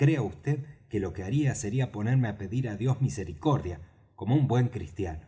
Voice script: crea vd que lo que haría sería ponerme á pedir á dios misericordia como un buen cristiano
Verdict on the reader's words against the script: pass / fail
pass